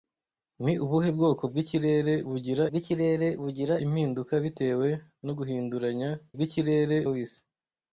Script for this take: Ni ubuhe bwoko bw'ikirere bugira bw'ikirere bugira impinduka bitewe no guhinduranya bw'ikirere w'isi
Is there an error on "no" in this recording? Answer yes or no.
no